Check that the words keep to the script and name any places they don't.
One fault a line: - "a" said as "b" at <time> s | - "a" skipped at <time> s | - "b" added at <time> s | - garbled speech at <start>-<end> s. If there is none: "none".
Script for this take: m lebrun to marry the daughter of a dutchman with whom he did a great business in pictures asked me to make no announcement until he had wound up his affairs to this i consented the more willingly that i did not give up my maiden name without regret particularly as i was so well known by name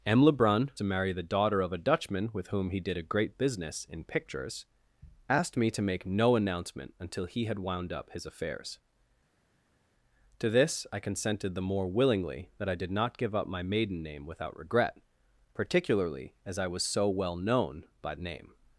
none